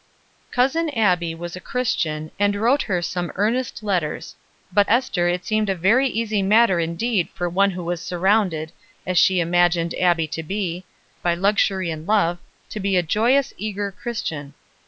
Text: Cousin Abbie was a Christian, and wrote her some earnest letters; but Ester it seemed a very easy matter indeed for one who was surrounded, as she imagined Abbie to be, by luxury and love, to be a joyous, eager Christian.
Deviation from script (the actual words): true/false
false